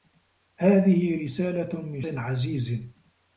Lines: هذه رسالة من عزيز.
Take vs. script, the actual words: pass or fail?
pass